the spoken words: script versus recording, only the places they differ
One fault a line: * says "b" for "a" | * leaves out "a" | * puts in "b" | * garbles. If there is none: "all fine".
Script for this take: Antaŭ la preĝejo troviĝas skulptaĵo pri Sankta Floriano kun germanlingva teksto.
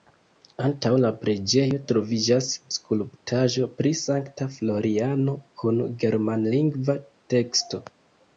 all fine